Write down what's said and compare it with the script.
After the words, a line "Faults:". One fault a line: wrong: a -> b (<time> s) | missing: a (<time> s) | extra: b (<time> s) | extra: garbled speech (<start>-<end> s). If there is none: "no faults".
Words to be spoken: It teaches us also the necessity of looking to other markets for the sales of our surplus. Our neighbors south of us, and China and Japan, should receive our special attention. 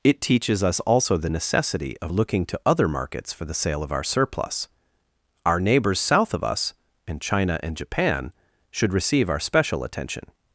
It teaches us also the necessity of looking to other markets for the sale of our surplus. Our neighbors south of us, and China and Japan, should receive our special attention.
Faults:
wrong: sales -> sale (3.5 s)